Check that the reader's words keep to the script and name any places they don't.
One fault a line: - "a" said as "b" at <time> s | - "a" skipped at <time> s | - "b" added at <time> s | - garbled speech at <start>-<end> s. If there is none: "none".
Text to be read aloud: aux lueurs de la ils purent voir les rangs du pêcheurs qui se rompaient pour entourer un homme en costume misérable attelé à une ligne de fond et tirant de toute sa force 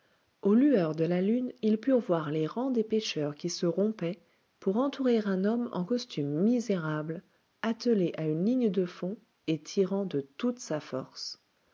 - "lune" added at 1.2 s
- "du" said as "des" at 2.7 s